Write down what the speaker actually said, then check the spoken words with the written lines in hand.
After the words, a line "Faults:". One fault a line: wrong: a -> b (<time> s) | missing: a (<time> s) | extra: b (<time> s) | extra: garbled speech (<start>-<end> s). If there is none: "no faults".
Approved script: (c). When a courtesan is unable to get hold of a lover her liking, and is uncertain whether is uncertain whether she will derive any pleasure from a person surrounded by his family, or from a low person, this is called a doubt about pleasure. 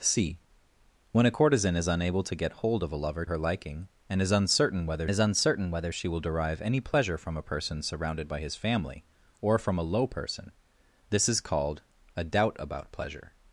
(c). When a courtesan is unable to get hold of a lover her liking, and is uncertain whether is uncertain whether she will derive any pleasure from a person surrounded by his family, or from a low person, this is called a doubt about pleasure.
Faults:
no faults